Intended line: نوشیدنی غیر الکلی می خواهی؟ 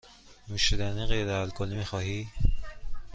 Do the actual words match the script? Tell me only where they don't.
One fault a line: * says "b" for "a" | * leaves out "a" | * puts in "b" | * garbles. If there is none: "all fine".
all fine